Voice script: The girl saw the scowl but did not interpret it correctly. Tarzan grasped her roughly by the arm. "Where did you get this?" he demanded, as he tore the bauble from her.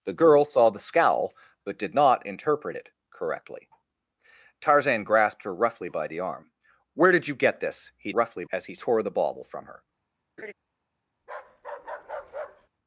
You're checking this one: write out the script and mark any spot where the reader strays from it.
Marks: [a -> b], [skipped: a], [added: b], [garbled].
The girl saw the scowl but did not interpret it correctly. Tarzan grasped her roughly by the arm. "Where did you get this?" he [demanded, -> roughly] as he tore the bauble from her.